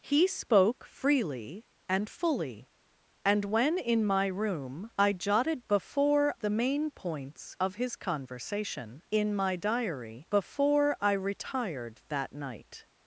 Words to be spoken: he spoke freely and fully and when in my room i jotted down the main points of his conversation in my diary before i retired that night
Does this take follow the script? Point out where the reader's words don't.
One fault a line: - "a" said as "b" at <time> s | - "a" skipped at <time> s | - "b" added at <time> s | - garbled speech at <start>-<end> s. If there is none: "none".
- "down" said as "before" at 5.7 s